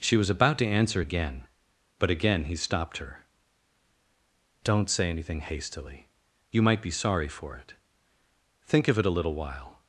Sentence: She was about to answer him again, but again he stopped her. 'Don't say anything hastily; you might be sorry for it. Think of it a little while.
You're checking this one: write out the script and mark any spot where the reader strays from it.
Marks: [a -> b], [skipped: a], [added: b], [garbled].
She was about to answer [skipped: him] again, but again he stopped her. 'Don't say anything hastily; you might be sorry for it. Think of it a little while.